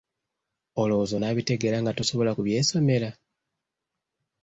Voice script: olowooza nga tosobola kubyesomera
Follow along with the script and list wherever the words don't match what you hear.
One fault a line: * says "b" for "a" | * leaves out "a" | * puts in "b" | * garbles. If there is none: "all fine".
* puts in "onaabitegeera"